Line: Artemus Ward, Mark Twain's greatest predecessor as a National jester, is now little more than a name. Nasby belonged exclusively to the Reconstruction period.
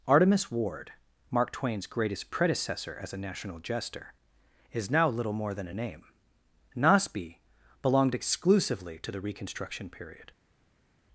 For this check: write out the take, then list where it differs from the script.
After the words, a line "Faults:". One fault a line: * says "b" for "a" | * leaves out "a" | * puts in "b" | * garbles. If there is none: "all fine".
Artemus Ward, Mark Twain's greatest predecessor as a National jester, is now little more than a name. Nasby belonged exclusively to the Reconstruction period.
Faults:
all fine